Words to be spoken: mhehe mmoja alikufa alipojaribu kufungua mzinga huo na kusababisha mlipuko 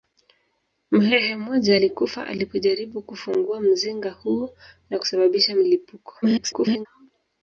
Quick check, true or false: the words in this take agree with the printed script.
false